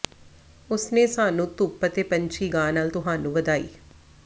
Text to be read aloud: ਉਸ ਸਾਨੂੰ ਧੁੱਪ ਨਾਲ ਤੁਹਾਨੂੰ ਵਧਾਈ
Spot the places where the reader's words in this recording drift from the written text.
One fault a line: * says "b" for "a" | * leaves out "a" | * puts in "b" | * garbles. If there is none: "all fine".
* puts in "ਨੇ"
* puts in "ਅਤੇ ਪੰਛੀ ਗਾ"